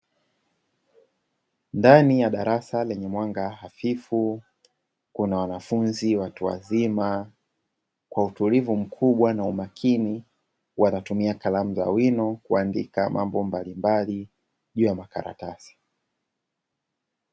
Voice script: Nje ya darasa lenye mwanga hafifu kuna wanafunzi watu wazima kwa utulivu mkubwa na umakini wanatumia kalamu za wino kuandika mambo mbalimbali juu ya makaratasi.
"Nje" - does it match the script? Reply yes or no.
no